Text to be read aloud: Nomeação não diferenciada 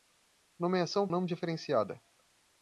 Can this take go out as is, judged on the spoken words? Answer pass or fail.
pass